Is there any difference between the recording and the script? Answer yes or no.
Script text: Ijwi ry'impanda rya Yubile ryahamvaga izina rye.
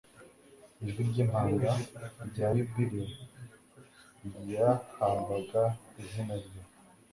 no